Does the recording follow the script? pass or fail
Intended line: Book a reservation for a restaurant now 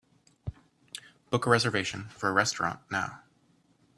pass